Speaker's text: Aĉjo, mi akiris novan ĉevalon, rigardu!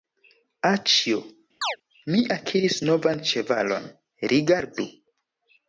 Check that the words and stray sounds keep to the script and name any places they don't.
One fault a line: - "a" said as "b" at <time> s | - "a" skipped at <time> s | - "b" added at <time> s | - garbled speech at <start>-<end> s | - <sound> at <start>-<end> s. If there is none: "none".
- chirp at 1.6-1.8 s